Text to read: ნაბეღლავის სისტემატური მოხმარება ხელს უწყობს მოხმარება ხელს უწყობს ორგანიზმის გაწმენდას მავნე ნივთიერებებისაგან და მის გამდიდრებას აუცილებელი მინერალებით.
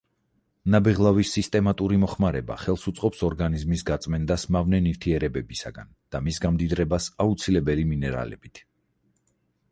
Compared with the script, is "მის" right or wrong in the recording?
right